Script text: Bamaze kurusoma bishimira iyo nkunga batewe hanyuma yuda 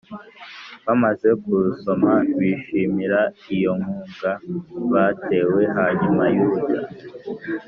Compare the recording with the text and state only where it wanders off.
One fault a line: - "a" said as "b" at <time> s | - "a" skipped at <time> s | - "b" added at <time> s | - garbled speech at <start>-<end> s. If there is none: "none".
none